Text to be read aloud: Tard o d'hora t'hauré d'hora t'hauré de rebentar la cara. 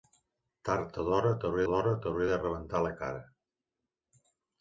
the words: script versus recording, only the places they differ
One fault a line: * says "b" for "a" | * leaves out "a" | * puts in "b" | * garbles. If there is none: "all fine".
all fine